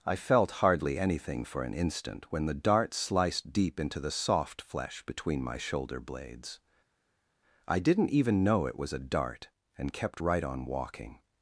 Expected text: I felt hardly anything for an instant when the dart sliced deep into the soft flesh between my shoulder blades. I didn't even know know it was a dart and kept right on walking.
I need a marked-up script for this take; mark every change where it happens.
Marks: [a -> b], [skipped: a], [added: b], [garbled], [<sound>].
I felt hardly anything for an instant when the dart sliced deep into the soft flesh between my shoulder blades. I didn't even know [skipped: know] it was a dart and kept right on walking.